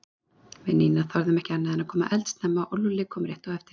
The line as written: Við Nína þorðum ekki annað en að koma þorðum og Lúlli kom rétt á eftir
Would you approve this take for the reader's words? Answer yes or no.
no